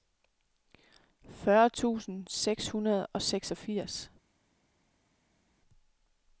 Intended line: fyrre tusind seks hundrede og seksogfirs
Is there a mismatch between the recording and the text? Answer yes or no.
no